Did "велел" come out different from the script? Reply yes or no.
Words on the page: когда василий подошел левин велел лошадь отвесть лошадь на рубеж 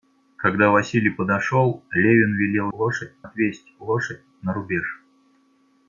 no